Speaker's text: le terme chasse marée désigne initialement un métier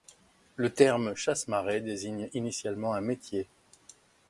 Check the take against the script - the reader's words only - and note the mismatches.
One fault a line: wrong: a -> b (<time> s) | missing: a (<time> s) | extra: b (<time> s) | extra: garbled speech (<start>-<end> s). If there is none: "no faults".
no faults